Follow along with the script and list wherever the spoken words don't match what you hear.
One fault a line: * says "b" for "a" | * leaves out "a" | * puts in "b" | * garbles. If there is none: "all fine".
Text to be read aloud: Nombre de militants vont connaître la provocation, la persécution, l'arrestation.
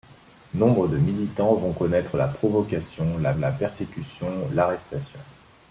* puts in "la"